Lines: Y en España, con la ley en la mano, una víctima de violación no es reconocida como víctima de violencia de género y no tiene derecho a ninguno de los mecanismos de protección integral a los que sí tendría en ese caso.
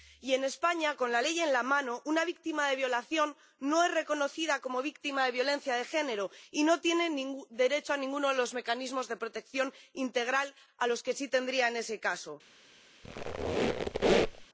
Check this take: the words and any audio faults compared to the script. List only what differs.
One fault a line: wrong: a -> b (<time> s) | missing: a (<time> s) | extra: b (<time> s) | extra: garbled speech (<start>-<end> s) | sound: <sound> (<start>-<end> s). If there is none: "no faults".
sound: squeak (13.0-14.5 s)